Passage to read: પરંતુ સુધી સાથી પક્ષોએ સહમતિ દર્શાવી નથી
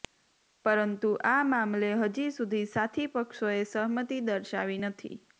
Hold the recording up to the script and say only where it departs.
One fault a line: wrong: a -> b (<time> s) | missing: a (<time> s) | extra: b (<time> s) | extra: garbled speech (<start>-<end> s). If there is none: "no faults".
extra: આ મામલે હજી (1.2 s)